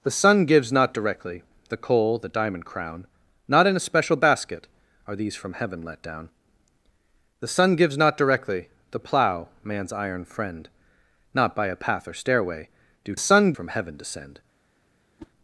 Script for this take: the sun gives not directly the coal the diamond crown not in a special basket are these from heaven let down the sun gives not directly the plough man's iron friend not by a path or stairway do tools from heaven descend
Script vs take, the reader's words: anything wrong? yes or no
yes